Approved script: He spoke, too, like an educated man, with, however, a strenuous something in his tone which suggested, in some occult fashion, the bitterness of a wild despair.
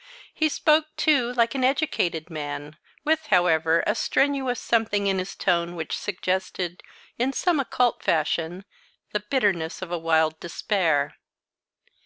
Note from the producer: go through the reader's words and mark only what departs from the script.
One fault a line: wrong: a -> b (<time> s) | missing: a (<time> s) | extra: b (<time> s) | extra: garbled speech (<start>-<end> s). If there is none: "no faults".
no faults